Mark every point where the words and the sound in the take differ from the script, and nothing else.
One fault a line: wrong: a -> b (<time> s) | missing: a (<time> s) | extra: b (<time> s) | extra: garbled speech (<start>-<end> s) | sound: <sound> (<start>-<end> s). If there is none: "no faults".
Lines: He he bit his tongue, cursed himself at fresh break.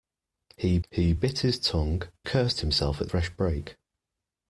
no faults